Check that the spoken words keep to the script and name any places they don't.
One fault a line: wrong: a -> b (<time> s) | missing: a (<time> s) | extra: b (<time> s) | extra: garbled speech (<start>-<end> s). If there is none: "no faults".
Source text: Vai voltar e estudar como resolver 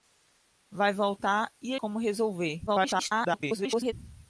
missing: estudar (1.8 s)
extra: garbled speech (2.7-3.9 s)